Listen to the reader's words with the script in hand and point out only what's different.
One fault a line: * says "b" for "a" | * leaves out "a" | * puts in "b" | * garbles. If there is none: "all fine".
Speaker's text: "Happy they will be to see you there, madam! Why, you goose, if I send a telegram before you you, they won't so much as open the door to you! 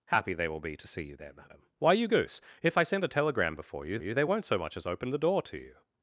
all fine